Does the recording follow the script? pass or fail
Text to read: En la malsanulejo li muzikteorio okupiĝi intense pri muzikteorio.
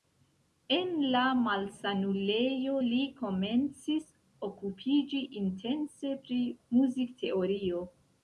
fail